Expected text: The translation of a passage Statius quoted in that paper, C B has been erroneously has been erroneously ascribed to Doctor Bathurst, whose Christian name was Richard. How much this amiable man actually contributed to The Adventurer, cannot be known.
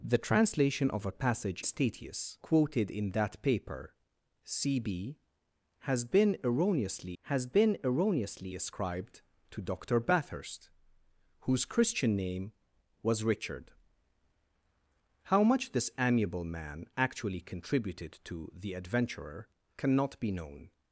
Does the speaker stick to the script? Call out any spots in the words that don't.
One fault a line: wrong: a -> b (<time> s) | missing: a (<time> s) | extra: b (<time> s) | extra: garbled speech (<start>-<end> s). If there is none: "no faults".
no faults